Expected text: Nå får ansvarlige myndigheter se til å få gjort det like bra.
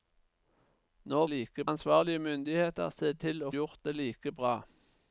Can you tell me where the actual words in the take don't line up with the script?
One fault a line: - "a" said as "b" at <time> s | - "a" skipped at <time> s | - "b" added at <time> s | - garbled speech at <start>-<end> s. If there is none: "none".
- "får" said as "like" at 1.3 s
- "få" skipped at 3.5 s